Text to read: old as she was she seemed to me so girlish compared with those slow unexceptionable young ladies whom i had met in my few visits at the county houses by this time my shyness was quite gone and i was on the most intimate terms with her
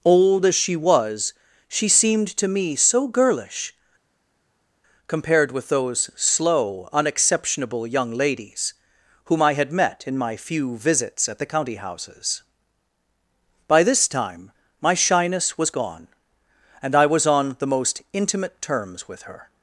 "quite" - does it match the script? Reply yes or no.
no